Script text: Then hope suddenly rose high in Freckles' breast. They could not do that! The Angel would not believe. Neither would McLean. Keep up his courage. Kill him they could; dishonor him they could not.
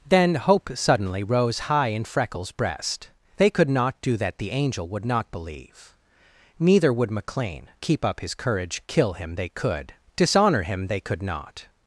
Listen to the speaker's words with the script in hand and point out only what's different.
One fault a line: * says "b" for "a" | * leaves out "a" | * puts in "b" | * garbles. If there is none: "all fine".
all fine